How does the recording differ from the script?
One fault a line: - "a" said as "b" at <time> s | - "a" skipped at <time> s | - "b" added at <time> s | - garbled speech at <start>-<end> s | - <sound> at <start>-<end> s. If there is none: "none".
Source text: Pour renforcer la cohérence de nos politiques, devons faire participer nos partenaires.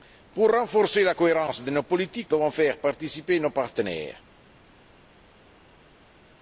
none